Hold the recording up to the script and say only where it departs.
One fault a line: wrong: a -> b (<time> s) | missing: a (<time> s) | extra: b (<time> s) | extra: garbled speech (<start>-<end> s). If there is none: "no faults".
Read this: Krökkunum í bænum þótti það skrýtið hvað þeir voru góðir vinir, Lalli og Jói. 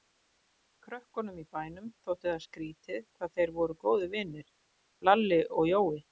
no faults